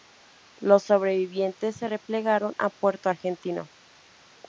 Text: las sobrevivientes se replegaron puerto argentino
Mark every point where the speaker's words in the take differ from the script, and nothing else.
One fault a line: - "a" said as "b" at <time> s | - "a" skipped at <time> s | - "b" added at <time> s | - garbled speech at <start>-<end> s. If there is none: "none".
- "las" said as "los" at 0.6 s
- "a" added at 2.6 s